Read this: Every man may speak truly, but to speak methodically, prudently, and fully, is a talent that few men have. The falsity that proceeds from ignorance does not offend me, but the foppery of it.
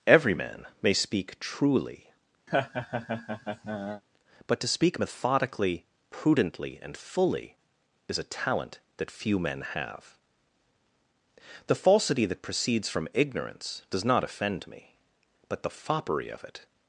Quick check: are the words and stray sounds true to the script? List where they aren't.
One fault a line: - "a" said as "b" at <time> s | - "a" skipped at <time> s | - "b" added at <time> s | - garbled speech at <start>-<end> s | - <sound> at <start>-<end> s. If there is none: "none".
- laugh at 2.5-4.0 s